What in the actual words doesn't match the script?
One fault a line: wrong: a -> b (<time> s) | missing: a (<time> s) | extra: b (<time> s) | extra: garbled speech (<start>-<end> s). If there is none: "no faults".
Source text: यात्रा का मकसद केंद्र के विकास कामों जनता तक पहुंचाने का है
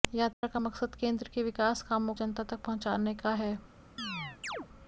no faults